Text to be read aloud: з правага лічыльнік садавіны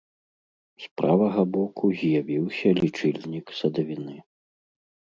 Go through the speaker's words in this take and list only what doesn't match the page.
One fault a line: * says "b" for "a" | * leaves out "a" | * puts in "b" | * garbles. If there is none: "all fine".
* puts in "боку з'явіўся"